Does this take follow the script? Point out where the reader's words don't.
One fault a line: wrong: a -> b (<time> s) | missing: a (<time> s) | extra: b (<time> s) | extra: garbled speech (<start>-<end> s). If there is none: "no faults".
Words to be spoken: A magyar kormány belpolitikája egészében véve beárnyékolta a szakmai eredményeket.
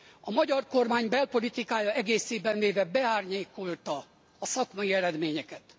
no faults